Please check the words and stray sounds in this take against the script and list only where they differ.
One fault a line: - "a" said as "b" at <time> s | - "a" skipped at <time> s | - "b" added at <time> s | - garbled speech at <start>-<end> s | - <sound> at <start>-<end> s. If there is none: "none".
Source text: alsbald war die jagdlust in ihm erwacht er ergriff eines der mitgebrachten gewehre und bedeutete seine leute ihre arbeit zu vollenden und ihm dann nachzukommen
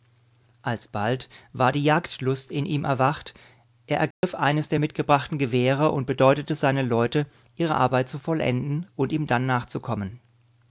- dropout at 4.1-4.2 s